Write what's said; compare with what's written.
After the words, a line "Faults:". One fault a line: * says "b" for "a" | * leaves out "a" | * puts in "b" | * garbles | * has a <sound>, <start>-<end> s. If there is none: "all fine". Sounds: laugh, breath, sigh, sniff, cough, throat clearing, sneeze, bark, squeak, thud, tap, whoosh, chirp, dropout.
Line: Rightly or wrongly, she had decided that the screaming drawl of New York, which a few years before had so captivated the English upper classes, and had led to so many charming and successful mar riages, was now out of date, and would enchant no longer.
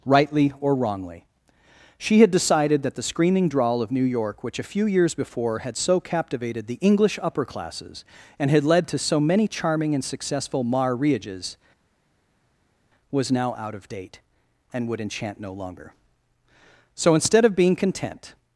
Rightly or wrongly, she had decided that the screaming drawl of New York, which a few years before had so captivated the English upper classes, and had led to so many charming and successful mar riages, was now out of date, and would enchant no longer. So instead of being content
Faults:
* puts in "So instead of being content"